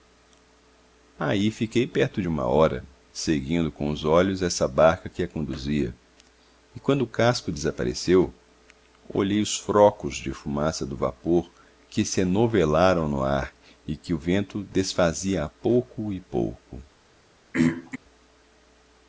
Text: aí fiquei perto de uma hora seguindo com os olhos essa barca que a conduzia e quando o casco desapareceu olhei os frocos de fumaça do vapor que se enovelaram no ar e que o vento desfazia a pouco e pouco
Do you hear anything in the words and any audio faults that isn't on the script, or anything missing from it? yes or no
yes